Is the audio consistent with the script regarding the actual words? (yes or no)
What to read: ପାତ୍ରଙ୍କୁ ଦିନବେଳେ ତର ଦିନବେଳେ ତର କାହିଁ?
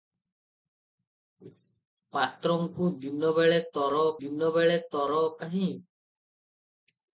yes